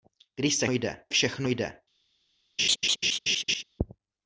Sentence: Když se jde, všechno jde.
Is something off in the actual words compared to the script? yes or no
no